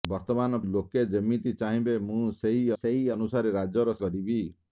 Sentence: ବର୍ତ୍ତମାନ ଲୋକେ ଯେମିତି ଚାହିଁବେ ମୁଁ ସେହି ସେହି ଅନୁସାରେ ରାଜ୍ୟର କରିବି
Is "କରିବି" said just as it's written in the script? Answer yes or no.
yes